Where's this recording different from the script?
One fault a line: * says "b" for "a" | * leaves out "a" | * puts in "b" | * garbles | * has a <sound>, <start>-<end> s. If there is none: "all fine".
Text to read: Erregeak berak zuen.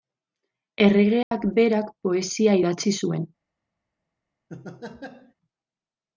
* has a dropout, 1.2-1.3 s
* puts in "poesia idatzi"
* has a laugh, 4.5-5.3 s